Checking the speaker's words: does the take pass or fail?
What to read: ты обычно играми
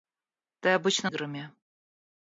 pass